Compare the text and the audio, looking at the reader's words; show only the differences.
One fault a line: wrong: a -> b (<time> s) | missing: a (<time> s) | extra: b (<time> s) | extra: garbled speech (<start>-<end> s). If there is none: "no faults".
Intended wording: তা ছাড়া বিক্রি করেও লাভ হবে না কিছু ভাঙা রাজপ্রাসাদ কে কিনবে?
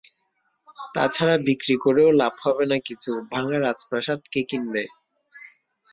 no faults